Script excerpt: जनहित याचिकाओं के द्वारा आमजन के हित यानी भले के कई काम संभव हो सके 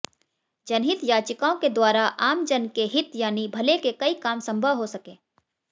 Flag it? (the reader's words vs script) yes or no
no